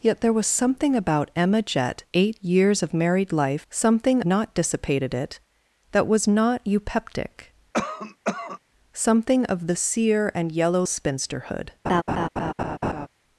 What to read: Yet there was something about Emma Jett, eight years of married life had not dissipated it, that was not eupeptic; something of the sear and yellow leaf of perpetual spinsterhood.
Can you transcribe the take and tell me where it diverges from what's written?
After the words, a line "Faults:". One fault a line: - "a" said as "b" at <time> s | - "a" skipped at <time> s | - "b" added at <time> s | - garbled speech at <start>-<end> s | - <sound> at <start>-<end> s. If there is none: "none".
Yet there was something about Emma Jett, eight years of married life something not dissipated it, that was not eupeptic; something of the sear and yellow spinsterhood.
Faults:
- "had" said as "something" at 3.7 s
- cough at 7.7-8.6 s
- "leaf of perpetual" skipped at 10.8 s
- laugh at 11.8-13.1 s